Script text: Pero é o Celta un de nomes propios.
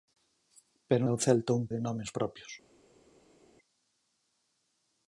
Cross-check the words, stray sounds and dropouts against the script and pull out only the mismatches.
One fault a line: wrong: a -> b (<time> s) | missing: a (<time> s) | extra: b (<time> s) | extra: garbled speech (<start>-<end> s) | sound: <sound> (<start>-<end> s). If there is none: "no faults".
no faults